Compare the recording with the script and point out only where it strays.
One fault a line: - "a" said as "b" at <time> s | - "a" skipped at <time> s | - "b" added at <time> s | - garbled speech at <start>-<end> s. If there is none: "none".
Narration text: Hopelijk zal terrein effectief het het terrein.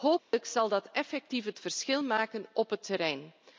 - "terrein" said as "dat" at 0.7 s
- "verschil maken op" added at 1.6 s